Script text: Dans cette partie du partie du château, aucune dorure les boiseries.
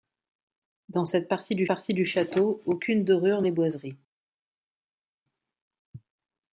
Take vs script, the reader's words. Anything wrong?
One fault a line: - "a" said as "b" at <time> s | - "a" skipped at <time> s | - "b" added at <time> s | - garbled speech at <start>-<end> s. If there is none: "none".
none